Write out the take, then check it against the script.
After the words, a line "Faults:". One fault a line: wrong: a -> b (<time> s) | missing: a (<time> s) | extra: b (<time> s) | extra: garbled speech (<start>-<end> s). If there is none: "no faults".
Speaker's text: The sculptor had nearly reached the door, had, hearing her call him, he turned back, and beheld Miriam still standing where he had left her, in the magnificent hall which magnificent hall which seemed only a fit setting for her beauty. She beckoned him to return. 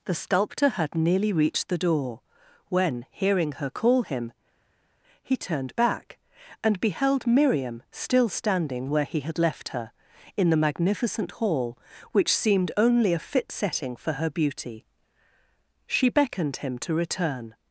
The sculptor had nearly reached the door, when, hearing her call him, he turned back, and beheld Miriam still standing where he had left her, in the magnificent hall which seemed only a fit setting for her beauty. She beckoned him to return.
Faults:
wrong: had -> when (2.7 s)
missing: magnificent hall which (12.4 s)